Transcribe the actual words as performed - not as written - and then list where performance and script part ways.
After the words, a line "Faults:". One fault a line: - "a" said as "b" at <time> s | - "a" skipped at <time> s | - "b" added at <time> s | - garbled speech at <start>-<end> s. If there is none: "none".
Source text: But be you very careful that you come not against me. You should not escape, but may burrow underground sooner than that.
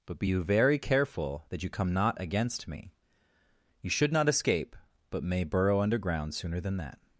But be you very careful that you come not against me. You should not escape, but may burrow underground sooner than that.
Faults:
none